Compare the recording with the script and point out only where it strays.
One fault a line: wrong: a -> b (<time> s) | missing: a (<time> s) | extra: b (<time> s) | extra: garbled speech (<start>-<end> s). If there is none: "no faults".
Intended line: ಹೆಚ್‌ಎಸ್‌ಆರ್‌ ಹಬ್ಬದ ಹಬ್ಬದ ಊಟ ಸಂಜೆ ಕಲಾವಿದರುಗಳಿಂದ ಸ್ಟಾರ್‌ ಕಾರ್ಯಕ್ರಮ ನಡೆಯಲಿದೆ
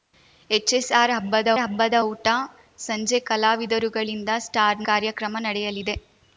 no faults